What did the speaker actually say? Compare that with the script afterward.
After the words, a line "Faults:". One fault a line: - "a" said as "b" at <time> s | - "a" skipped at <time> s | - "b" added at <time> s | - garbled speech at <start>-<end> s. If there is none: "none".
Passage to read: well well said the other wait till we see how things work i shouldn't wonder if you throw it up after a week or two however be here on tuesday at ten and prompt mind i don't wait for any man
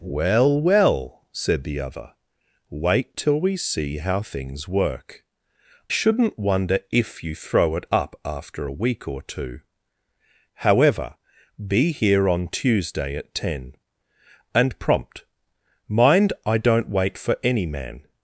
well well said the other wait till we see how things work shouldn't wonder if you throw it up after a week or two however be here on tuesday at ten and prompt mind i don't wait for any man
Faults:
- "i" skipped at 5.2 s